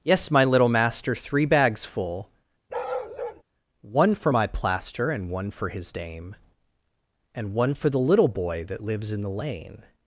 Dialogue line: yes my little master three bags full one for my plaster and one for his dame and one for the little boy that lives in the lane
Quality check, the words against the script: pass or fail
pass